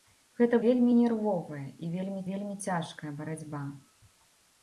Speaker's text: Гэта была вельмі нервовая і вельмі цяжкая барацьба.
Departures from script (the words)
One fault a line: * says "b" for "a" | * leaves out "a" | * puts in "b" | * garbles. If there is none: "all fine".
* leaves out "была"
* puts in "вельмі"